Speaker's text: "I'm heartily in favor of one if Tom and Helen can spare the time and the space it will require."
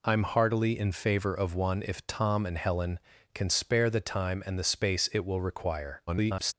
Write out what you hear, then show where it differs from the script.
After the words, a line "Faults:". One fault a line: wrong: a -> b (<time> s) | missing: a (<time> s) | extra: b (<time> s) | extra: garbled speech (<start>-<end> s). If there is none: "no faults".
"I'm heartily in favor of one if Tom and Helen can spare the time and the space it will require." [garbled]
Faults:
extra: garbled speech (6.1-6.5 s)